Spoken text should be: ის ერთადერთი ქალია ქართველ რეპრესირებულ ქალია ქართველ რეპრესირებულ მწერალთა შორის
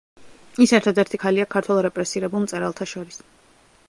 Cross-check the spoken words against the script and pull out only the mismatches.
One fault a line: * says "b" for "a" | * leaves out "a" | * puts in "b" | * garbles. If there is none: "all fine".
* leaves out "ქალია ქართველ რეპრესირებულ"